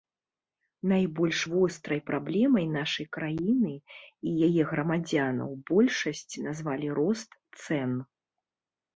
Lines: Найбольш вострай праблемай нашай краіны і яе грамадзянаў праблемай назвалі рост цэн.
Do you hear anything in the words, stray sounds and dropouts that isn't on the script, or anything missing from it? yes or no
yes